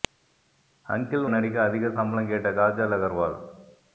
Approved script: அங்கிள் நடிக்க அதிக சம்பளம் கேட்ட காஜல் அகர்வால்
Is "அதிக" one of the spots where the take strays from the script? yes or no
no